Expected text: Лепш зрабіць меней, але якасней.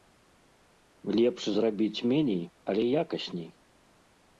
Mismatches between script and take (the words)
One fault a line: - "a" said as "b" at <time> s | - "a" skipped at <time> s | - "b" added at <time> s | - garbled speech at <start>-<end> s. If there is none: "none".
none